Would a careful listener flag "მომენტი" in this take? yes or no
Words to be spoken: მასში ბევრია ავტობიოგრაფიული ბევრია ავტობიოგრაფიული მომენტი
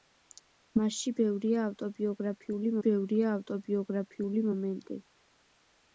no